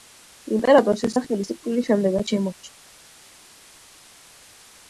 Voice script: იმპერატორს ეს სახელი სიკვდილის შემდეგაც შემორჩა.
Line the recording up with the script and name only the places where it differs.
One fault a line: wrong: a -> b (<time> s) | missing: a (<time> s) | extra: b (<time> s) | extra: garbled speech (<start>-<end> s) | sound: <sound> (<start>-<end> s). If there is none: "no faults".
no faults